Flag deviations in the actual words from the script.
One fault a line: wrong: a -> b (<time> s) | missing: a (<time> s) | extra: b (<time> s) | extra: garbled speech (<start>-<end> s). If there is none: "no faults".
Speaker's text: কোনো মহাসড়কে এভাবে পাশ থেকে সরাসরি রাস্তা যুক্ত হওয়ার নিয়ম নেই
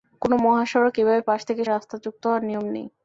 missing: সরাসরি (1.6 s)